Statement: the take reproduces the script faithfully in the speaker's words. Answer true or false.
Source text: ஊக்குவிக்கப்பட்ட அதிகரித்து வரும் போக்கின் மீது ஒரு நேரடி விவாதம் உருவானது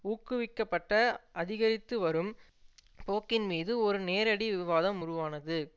true